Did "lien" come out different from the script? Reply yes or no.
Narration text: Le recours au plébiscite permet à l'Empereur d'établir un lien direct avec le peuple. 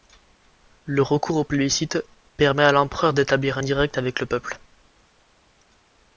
yes